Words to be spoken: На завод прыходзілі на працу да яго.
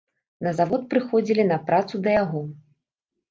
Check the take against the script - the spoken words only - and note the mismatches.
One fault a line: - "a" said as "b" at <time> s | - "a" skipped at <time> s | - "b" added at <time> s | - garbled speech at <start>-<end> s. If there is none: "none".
none